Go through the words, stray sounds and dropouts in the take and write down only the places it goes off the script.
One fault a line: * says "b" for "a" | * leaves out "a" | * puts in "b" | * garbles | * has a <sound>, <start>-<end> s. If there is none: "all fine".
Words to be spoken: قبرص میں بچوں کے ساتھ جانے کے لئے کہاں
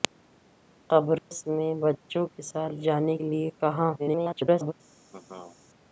* has a dropout, 1.2-1.3 s
* leaves out "کے"
* garbles
* has a laugh, 5.1-5.6 s